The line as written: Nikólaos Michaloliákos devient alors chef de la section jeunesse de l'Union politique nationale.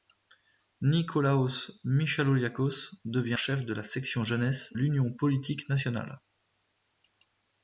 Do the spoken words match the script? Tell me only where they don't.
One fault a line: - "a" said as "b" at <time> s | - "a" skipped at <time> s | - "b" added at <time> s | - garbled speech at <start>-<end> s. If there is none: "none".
- "alors" skipped at 3.4 s
- "de" skipped at 4.8 s